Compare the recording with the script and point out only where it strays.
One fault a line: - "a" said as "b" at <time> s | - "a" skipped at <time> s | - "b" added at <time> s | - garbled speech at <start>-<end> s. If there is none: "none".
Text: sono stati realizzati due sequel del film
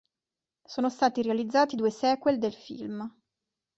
none